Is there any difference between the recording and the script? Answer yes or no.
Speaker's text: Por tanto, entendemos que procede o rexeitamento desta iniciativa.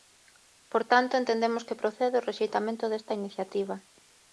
no